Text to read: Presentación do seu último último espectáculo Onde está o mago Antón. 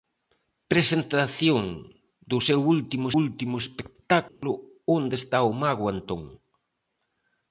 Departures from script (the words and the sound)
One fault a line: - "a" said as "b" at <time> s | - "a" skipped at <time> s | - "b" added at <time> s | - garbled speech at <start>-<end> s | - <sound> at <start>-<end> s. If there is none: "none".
- dropout at 4.3-4.4 s